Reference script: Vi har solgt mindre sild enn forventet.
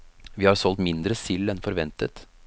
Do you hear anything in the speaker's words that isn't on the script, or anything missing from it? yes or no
no